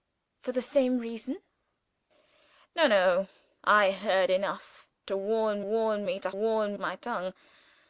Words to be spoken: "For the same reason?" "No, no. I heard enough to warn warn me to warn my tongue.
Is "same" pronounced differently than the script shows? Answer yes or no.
no